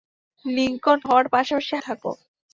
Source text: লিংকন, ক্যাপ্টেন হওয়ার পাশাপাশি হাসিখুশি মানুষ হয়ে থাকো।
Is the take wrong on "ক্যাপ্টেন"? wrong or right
wrong